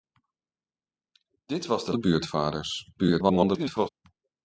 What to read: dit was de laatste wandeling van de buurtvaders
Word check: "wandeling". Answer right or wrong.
wrong